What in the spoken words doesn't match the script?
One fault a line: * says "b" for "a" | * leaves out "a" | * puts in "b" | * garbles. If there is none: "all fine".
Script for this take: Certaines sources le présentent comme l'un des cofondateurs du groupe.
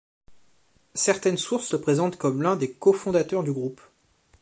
all fine